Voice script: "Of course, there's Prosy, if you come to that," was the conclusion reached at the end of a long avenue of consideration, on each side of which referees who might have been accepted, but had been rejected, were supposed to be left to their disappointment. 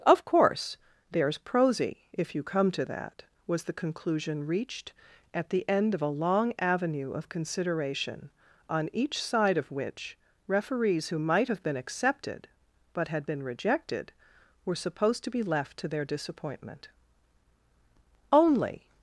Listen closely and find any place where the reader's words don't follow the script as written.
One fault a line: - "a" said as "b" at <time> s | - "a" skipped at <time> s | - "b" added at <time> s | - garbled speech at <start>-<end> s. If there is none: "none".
- "Only" added at 18.3 s